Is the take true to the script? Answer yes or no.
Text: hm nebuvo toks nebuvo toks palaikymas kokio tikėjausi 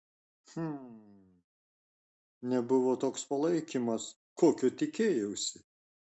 no